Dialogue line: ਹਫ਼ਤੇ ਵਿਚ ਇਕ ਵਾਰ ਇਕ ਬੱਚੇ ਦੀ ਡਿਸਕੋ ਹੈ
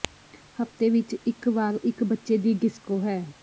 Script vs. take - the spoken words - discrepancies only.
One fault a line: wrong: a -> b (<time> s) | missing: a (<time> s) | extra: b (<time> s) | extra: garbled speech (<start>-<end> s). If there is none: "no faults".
no faults